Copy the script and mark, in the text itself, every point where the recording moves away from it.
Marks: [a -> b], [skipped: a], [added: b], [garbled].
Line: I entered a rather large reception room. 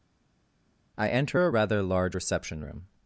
I [entered -> enter] a rather large reception room.